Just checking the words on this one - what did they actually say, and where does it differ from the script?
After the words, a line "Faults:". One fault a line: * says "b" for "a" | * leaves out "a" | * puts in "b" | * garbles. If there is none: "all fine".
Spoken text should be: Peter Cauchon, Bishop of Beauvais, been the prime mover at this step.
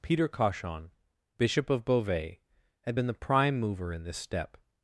Peter Cauchon, Bishop of Beauvais, had been the prime mover in this step.
Faults:
* puts in "had"
* says "in" for "at"